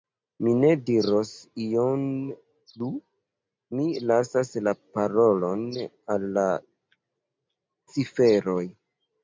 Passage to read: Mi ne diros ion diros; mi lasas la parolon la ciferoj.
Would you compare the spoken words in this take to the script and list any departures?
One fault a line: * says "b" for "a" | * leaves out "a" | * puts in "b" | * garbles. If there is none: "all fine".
* says "plu" for "diros"
* puts in "al"